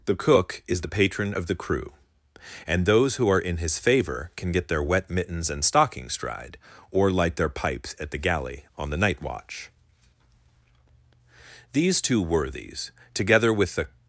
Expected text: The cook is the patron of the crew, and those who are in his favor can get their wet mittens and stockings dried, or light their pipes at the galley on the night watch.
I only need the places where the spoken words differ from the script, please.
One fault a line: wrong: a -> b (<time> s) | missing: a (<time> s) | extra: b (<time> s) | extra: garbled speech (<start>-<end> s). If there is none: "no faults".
extra: These two worthies together with the (11.7 s)